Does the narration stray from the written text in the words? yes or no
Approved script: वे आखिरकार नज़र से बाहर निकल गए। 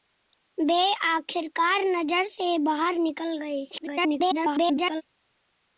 yes